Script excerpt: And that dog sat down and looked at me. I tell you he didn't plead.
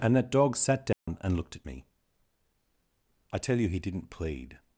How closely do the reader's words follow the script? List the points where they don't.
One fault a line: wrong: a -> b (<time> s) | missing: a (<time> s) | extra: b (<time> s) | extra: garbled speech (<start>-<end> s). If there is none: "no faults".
no faults